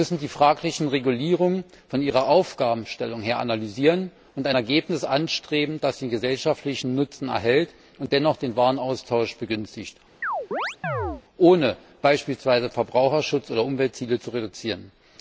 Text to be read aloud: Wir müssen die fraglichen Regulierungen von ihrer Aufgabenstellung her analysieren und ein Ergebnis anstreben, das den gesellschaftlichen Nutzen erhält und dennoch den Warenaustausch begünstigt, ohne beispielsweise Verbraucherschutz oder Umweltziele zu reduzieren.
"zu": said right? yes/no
yes